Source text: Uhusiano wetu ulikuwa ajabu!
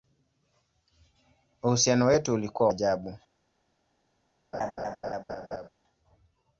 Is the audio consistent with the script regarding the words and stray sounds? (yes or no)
no